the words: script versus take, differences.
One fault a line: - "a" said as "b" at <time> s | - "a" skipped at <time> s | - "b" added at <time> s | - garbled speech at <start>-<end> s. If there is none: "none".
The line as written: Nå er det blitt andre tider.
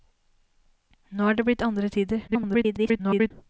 - garbled speech at 2.3-3.3 s